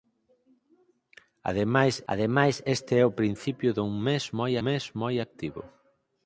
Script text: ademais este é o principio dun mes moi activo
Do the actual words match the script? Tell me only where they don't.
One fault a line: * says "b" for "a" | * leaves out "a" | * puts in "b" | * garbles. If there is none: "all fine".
* puts in "ademais"
* puts in "mes moi"